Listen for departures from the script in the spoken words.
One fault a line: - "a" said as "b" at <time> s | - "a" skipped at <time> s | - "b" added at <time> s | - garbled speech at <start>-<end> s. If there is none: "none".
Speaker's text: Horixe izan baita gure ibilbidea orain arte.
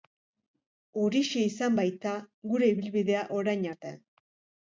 none